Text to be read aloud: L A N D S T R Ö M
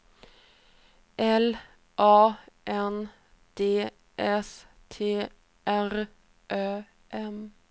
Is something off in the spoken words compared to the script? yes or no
no